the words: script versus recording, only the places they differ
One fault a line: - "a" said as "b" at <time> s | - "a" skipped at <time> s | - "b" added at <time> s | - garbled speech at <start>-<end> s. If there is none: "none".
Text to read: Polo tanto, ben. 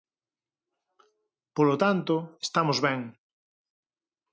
- "estamos" added at 2.5 s